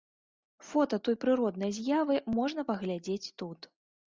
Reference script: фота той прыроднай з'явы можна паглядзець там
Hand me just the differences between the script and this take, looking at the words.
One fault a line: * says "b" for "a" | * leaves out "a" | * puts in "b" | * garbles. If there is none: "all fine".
* says "тут" for "там"